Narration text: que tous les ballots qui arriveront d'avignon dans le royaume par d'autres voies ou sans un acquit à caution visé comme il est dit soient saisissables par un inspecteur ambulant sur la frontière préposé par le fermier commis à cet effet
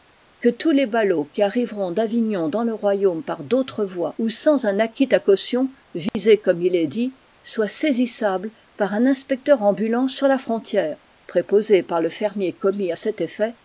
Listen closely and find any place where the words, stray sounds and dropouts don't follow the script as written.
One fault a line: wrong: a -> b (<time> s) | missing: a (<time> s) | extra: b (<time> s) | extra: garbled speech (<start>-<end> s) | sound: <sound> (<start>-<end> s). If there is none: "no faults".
sound: dropout (6.1-6.1 s)